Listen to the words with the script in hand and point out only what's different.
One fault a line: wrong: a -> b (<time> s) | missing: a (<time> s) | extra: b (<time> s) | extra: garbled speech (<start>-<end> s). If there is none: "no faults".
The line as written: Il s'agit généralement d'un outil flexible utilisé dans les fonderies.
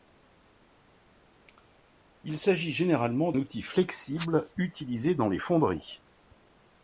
missing: d'un (3.3 s)